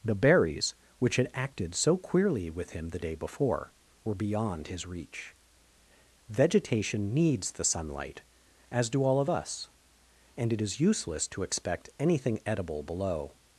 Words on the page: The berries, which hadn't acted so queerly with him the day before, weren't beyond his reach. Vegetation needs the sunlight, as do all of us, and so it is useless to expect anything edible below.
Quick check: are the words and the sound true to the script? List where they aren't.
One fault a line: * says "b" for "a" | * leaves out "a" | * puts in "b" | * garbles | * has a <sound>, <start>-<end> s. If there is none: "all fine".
* says "had" for "hadn't"
* says "were" for "weren't"
* leaves out "so"